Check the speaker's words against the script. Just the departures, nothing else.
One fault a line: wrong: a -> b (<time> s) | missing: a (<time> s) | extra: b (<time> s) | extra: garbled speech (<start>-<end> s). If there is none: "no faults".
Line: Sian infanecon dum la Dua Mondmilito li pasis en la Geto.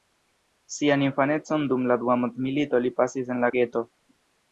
no faults